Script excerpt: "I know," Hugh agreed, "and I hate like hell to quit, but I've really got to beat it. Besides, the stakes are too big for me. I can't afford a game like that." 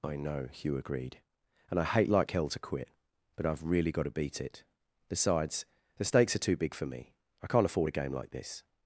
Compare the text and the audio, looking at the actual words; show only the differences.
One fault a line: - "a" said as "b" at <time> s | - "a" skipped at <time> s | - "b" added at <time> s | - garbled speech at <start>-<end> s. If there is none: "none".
- "that" said as "this" at 8.3 s